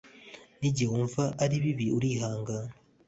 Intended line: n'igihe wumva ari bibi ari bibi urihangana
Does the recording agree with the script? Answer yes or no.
no